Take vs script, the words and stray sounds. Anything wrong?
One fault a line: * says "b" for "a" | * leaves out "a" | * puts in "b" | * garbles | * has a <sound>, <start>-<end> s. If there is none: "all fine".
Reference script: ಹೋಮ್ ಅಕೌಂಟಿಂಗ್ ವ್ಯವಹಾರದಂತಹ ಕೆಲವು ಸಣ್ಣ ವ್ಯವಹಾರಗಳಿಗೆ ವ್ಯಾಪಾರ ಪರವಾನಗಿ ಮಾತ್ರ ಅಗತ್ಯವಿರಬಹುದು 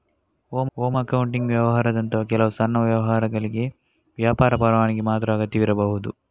* puts in "ಹೋಮ್"